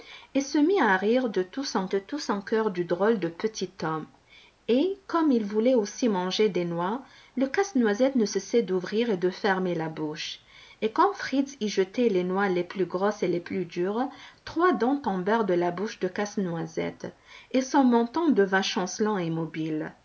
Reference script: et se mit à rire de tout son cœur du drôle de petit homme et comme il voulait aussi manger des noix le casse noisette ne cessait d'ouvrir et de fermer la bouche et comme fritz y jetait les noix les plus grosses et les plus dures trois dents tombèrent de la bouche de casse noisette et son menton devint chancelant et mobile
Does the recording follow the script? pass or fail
fail